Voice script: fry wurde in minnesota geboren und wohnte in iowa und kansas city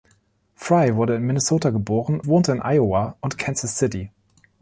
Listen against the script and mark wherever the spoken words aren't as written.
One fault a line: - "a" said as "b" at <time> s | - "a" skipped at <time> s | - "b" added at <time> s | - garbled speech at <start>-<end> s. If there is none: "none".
- "und" skipped at 2.2 s